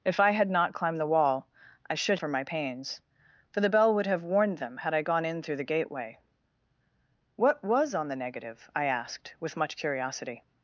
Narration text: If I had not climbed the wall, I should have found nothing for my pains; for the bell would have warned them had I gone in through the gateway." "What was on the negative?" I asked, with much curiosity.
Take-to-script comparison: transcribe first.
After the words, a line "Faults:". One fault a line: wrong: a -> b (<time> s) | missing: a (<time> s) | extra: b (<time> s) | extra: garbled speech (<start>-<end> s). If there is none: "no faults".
If I had not climbed the wall, I should for my pains; for the bell would have warned them had I gone in through the gateway." "What was on the negative?" I asked, with much curiosity.
Faults:
missing: have found nothing (2.2 s)